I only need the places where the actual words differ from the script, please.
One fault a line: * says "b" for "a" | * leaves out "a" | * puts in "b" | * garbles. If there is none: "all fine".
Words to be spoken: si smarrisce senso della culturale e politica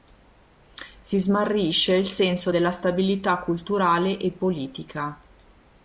* puts in "il"
* puts in "stabilità"